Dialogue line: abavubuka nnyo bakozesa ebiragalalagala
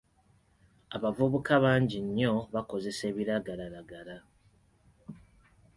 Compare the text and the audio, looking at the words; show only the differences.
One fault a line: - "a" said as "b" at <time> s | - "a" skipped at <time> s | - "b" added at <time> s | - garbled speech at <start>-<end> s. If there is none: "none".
- "bangi" added at 1.6 s